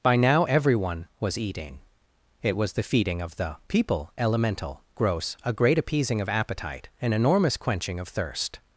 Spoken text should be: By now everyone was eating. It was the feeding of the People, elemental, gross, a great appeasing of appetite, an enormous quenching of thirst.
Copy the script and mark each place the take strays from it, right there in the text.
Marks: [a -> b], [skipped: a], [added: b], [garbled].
By now everyone was eating. It was the feeding of the People, elemental, gross, a great appeasing of appetite, an enormous quenching of thirst.